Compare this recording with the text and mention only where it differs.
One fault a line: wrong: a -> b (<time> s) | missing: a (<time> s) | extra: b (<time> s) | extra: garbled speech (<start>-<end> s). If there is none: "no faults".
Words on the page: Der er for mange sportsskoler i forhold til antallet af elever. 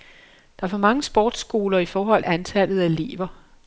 missing: til (2.2 s)